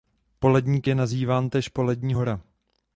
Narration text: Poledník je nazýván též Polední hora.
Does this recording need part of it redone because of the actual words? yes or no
no